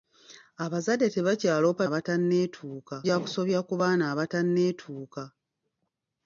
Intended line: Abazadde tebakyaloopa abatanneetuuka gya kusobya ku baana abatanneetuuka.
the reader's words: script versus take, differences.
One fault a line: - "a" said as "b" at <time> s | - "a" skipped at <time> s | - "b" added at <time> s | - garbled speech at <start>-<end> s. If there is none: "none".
none